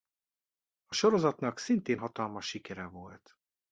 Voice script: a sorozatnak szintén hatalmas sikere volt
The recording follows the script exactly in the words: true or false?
true